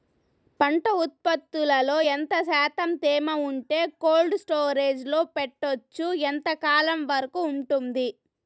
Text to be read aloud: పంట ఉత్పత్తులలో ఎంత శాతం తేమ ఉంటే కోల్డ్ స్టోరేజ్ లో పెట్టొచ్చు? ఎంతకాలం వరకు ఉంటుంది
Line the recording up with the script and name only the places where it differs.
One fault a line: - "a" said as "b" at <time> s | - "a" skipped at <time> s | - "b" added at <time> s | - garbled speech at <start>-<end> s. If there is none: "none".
none